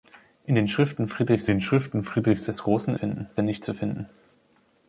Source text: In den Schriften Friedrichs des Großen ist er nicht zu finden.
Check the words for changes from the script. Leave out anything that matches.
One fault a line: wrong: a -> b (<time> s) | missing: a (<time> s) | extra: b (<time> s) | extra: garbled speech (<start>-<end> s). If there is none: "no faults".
extra: den Schriften Friedrichs (1.5 s)
wrong: ist -> finden (2.9 s)